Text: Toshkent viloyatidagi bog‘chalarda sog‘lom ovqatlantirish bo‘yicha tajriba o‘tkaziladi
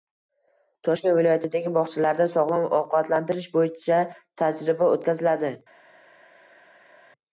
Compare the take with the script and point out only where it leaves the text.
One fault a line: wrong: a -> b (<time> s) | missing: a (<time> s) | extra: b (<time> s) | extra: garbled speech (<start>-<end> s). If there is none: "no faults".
no faults